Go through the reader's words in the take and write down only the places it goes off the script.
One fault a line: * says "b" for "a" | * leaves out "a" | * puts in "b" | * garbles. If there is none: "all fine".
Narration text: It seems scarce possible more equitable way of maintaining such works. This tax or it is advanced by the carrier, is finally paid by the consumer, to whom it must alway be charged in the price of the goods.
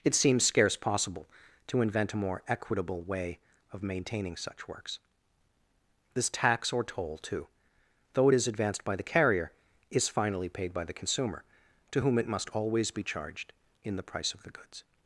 * puts in "to invent a"
* puts in "toll too though"
* says "always" for "alway"